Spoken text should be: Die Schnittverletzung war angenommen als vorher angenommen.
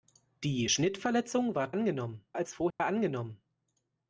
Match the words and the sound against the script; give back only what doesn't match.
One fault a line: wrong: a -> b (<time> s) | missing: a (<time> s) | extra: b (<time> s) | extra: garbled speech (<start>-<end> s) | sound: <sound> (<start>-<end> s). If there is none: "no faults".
sound: dropout (2.7-2.8 s)